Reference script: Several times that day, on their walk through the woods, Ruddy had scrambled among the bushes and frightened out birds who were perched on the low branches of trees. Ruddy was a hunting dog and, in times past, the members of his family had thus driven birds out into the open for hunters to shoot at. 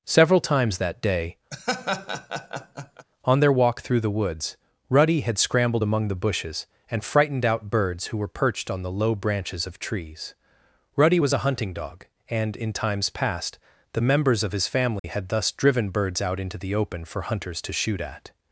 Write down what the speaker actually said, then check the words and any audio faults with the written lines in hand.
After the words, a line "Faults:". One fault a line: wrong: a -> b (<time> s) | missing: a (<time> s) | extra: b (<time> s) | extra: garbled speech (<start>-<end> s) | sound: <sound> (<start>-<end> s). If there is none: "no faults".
Several times that day, on their walk through the woods, Ruddy had scrambled among the bushes and frightened out birds who were perched on the low branches of trees. Ruddy was a hunting dog and, in times past, the members of his family had thus driven birds out into the open for hunters to shoot at.
Faults:
sound: laugh (1.5-3.1 s)
sound: dropout (15.0-15.0 s)